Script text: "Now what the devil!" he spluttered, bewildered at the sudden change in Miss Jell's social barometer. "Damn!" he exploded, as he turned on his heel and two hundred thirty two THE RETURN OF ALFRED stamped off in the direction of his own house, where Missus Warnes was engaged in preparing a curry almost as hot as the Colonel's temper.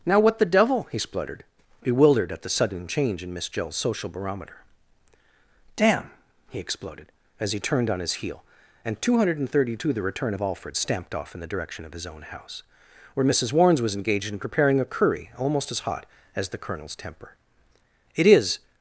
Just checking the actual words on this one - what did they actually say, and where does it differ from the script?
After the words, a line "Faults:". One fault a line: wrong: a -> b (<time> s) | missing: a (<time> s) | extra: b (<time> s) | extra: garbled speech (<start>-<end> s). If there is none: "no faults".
"Now what the devil!" he spluttered, bewildered at the sudden change in Miss Jell's social barometer. "Damn!" he exploded, as he turned on his heel and two hundred thirty two THE RETURN OF ALFRED stamped off in the direction of his own house, where Missus Warnes was engaged in preparing a curry almost as hot as the Colonel's temper. "It is
Faults:
extra: It is (18.1 s)